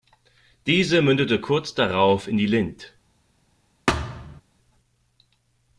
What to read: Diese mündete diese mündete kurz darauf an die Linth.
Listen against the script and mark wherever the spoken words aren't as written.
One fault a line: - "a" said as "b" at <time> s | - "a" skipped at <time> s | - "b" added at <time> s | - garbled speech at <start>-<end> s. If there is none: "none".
- "diese mündete" skipped at 1.4 s
- "an" said as "in" at 2.3 s